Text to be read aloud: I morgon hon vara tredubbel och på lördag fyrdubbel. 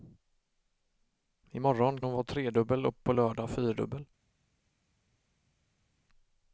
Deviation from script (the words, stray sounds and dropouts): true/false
false